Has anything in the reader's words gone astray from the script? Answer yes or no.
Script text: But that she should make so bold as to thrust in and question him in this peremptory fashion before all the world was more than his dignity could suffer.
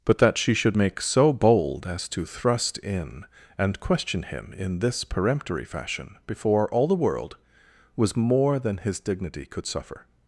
no